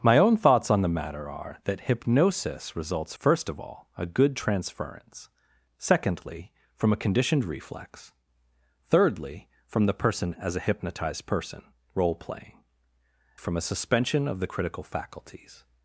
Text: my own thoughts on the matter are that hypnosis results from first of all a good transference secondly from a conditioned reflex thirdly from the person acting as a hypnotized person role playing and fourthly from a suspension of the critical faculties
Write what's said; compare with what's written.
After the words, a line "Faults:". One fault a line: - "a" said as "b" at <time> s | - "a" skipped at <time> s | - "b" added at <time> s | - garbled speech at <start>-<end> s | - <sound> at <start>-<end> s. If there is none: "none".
my own thoughts on the matter are that hypnosis results first of all a good transference secondly from a conditioned reflex thirdly from the person as a hypnotized person role playing from a suspension of the critical faculties
Faults:
- "from" skipped at 3.1 s
- "acting" skipped at 10.4 s
- "and fourthly" skipped at 12.6 s